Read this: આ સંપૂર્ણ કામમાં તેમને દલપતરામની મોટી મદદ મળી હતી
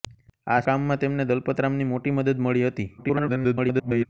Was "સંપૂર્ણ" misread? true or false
true